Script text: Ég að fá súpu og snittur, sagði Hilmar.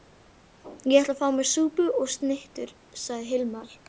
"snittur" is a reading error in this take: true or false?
false